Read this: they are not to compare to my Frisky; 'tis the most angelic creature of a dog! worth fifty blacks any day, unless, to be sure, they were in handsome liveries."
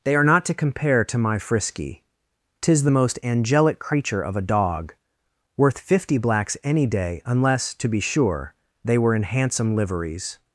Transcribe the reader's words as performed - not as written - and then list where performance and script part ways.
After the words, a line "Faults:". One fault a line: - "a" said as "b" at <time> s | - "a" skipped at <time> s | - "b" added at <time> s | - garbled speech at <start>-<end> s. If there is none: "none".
they are not to compare to my Frisky; 'tis the most angelic creature of a dog! worth fifty blacks any day, unless, to be sure, they were in handsome liveries."
Faults:
none